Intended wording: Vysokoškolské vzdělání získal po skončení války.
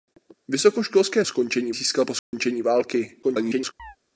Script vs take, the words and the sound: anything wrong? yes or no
yes